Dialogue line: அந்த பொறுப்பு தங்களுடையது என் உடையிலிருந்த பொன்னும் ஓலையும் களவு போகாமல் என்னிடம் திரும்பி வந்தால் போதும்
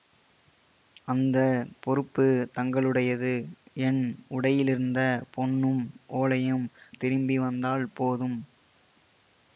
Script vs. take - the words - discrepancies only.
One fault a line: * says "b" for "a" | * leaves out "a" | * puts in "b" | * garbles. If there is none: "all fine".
* leaves out "களவு போகாமல் என்னிடம்"